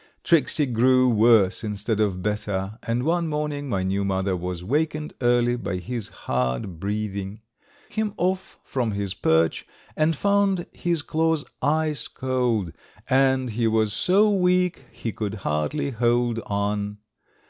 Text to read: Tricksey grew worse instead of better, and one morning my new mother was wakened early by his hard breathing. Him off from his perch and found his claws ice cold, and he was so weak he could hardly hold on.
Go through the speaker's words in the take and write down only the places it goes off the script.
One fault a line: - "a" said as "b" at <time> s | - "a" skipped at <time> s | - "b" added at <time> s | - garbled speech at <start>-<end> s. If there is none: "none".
none